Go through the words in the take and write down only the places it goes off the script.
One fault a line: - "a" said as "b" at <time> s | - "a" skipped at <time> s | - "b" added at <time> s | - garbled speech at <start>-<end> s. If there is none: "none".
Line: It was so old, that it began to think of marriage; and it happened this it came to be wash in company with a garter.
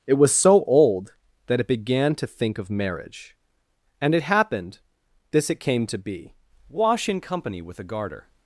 none